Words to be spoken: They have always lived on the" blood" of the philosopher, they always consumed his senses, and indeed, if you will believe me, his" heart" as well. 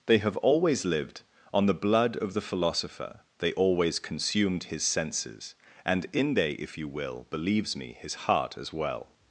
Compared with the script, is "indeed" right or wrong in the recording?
wrong